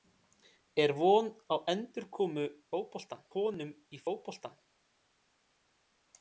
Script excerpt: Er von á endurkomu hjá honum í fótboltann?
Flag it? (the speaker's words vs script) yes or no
yes